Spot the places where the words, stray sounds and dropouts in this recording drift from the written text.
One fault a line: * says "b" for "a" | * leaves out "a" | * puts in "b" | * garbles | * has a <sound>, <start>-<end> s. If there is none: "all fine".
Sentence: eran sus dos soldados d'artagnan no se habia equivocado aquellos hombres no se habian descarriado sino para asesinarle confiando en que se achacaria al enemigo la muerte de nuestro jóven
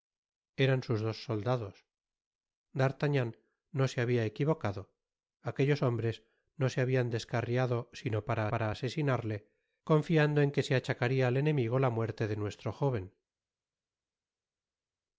* puts in "para"